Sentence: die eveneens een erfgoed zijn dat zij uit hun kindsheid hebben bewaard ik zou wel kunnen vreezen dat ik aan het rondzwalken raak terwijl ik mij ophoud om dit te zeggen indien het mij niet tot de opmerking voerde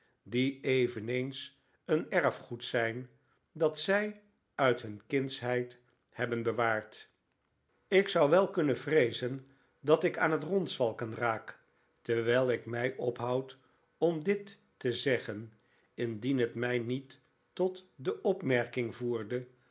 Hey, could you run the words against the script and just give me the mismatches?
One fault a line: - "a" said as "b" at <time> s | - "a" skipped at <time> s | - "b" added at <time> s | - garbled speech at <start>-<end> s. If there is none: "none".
none